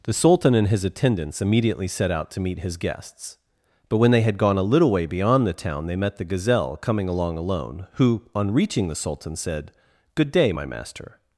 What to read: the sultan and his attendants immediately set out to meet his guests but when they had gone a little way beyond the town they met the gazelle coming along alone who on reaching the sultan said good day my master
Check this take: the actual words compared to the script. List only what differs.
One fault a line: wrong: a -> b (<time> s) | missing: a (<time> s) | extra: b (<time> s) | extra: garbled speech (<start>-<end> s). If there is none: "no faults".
no faults